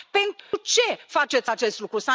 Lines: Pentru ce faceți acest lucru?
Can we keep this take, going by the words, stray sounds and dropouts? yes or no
no